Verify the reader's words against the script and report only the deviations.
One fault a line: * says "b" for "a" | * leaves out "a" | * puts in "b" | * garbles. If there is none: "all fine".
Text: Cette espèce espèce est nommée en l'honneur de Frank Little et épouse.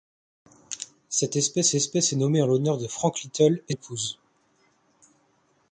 all fine